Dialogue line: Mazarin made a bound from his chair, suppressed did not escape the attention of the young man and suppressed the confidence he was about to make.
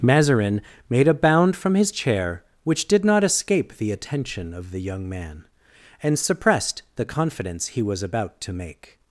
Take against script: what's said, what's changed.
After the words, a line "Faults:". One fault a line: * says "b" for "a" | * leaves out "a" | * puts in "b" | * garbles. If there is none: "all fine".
Mazarin made a bound from his chair, which did not escape the attention of the young man and suppressed the confidence he was about to make.
Faults:
* says "which" for "suppressed"